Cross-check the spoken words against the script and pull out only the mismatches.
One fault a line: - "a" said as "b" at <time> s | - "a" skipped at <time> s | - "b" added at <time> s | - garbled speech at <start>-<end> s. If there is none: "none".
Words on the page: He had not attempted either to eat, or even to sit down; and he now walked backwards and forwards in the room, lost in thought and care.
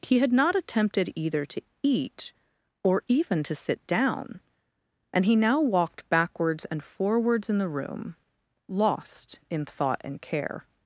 none